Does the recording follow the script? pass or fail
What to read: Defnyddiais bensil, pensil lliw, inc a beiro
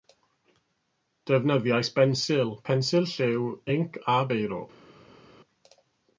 pass